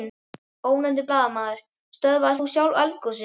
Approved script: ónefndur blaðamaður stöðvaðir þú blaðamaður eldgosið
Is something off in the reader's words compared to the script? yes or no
yes